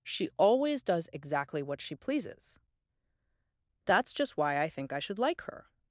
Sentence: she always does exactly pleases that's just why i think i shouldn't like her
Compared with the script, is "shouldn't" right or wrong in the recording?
wrong